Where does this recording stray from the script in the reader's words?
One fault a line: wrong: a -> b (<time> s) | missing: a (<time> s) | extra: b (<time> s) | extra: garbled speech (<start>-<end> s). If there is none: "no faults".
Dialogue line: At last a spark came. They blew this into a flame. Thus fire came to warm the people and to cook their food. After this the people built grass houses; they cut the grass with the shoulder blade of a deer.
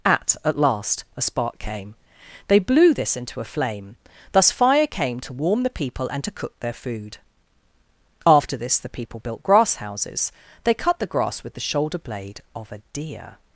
extra: at (0.4 s)